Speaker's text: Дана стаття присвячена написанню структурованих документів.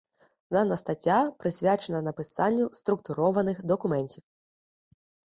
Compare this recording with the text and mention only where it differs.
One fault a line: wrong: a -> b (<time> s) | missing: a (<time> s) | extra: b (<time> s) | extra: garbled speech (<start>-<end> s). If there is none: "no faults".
no faults